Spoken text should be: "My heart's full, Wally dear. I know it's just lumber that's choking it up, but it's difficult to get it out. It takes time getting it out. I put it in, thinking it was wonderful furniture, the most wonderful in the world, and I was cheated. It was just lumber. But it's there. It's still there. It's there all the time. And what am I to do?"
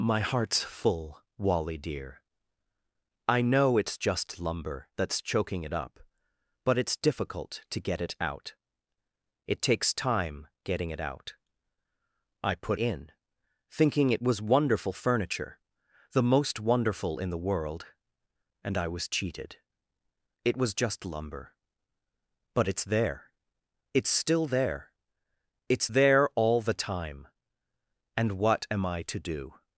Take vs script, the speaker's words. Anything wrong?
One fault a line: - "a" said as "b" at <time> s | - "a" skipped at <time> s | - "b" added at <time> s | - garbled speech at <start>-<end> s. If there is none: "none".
- "it" skipped at 12.8 s